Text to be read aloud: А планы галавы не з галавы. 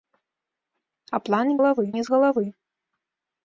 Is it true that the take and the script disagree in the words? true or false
false